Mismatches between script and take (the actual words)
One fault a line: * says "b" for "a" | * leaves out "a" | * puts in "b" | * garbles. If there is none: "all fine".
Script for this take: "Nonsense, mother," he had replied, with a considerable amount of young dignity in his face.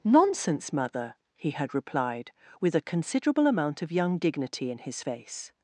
all fine